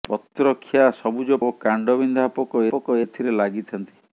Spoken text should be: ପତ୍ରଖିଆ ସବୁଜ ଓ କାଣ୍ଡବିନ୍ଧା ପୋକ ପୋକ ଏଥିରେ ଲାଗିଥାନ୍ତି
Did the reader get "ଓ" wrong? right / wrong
right